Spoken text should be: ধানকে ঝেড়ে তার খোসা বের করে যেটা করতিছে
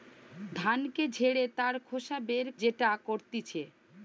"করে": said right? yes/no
no